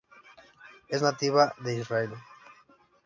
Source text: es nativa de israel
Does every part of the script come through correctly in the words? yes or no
yes